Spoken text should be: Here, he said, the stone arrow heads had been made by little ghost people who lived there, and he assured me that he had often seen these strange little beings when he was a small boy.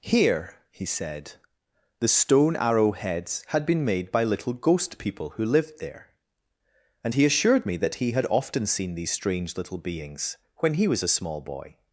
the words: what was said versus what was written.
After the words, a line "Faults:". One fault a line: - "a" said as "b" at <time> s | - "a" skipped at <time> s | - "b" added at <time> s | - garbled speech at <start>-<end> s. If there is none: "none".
Here, he said, the stone arrow heads had been made by little ghost people who lived there, and he assured me that he had often seen these strange little beings when he was a small boy.
Faults:
none